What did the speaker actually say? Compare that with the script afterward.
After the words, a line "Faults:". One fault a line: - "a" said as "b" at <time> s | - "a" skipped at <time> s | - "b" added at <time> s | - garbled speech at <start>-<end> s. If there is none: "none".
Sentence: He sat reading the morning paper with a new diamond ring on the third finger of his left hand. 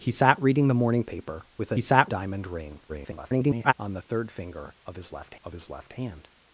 He sat reading the morning paper with a sat diamond ring [garbled] on the third finger of his left of his left hand.
Faults:
- "new" said as "sat" at 1.8 s
- garbled speech at 2.9-3.7 s
- "of his left" added at 5.4 s